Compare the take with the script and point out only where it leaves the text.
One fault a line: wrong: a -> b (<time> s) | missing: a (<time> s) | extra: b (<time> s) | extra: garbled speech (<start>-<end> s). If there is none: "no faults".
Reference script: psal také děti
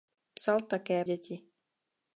no faults